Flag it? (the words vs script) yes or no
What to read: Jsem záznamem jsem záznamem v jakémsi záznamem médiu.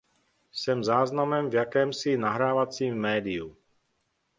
yes